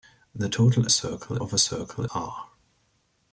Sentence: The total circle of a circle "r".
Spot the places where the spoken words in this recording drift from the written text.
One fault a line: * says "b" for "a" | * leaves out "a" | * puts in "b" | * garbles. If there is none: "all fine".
all fine